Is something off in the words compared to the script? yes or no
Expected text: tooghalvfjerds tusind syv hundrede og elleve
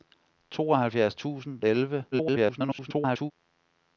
yes